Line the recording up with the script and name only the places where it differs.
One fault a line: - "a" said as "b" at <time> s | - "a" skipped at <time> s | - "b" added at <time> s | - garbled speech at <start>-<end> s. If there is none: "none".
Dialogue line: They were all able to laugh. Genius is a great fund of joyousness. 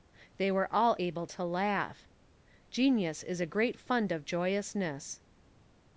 none